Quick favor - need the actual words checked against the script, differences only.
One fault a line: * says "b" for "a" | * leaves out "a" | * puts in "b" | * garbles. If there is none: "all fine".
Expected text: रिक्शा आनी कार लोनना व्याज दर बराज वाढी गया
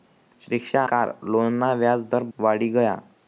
* leaves out "आनी"
* leaves out "बराज"